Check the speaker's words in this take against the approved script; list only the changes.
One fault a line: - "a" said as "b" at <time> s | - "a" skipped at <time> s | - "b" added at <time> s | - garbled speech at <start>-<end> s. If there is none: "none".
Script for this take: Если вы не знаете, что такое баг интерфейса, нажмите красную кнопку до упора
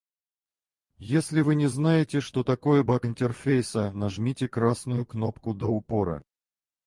none